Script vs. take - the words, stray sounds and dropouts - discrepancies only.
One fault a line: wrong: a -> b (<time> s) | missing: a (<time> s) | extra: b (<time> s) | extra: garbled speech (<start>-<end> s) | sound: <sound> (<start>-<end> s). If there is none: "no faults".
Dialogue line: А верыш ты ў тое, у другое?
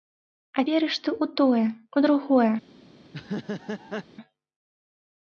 sound: laugh (3.0-4.0 s)